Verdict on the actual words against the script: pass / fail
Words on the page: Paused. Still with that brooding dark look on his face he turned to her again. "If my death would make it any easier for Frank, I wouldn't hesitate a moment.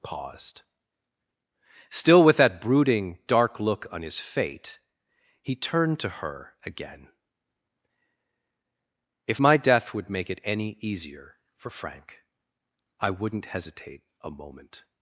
fail